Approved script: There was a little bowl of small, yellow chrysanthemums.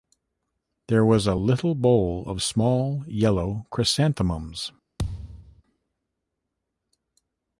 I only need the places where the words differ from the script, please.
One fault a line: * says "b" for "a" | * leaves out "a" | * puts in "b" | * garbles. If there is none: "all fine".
all fine